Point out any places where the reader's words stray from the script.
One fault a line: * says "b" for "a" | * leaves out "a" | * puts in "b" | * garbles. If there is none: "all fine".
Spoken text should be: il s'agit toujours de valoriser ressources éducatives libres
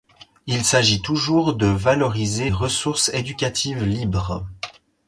all fine